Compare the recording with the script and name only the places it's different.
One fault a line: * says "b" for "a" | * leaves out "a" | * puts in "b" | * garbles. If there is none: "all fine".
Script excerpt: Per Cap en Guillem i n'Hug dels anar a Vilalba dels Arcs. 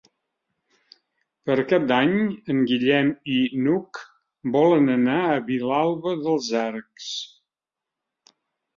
* puts in "d'Any"
* says "volen" for "dels"